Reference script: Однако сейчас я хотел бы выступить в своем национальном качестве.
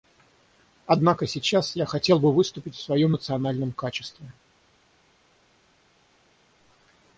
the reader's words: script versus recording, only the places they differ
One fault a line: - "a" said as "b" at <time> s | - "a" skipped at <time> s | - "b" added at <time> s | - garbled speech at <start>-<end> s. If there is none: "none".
none